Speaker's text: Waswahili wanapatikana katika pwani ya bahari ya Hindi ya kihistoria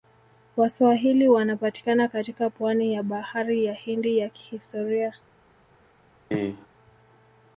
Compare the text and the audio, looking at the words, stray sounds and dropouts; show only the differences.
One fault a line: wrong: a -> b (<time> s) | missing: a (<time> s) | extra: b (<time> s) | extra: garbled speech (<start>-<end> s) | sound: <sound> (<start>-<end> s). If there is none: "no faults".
sound: cough (6.3-6.7 s)